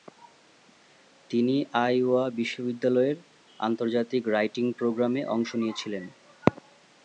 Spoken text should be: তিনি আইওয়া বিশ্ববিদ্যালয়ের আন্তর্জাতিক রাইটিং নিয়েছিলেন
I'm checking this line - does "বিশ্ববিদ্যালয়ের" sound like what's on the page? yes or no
yes